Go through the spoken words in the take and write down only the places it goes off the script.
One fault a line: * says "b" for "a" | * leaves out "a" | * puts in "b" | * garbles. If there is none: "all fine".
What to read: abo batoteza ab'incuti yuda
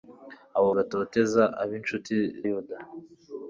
all fine